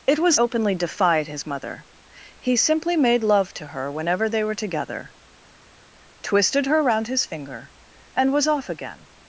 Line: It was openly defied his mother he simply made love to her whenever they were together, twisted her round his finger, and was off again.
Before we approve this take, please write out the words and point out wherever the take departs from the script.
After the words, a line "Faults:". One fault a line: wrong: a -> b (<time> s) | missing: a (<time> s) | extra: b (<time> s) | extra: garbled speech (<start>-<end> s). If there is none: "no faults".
It was openly defied his mother he simply made love to her whenever they were together, twisted her round his finger, and was off again.
Faults:
no faults